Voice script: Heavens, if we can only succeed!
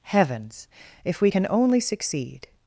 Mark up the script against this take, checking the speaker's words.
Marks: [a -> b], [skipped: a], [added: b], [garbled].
Heavens, if we can only succeed!